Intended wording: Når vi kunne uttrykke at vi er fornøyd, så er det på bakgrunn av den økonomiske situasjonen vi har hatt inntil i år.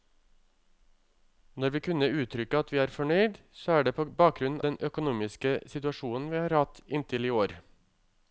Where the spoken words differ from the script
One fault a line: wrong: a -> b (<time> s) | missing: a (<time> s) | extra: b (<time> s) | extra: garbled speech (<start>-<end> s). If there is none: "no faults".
missing: av (4.6 s)